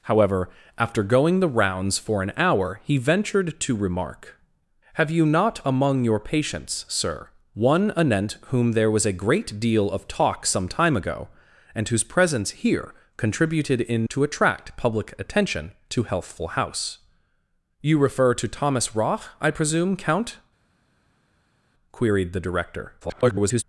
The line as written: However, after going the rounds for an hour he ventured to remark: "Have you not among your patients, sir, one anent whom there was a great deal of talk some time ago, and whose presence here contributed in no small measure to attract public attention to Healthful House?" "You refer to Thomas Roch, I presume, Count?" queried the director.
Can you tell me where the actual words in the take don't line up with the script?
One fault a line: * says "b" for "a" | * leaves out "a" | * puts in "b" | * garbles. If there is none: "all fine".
* leaves out "no small measure"
* garbles